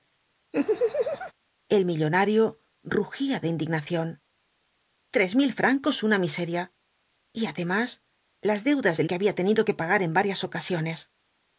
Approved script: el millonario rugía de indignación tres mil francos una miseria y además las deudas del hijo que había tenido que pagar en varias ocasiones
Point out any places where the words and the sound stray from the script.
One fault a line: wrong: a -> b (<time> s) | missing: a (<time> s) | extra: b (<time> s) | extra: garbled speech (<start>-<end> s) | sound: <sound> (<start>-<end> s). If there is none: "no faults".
sound: laugh (0.5-1.3 s)
missing: hijo (9.1 s)